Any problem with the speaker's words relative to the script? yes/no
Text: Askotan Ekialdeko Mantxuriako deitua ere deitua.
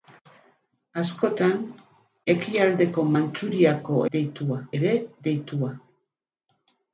no